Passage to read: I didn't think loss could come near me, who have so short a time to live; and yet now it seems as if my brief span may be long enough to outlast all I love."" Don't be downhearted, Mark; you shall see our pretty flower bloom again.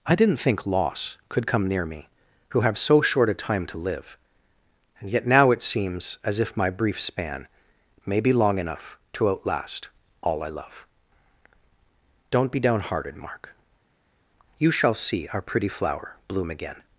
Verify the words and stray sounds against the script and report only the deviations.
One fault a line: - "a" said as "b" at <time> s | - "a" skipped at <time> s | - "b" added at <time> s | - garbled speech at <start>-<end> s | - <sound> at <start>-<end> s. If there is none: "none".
none